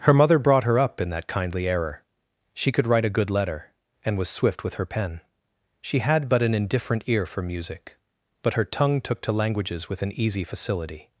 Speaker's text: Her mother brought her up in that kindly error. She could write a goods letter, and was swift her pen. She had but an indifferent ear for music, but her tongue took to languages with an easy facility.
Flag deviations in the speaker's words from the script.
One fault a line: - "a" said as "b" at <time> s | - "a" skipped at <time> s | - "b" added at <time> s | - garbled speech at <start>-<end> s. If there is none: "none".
- "goods" said as "good" at 3.2 s
- "with" added at 4.6 s